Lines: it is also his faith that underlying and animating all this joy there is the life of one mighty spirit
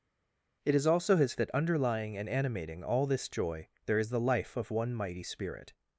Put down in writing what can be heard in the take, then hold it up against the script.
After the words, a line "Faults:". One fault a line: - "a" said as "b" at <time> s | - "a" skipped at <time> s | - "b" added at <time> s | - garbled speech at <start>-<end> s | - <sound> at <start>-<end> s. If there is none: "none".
it is also his that underlying and animating all this joy there is the life of one mighty spirit
Faults:
- "faith" skipped at 1.3 s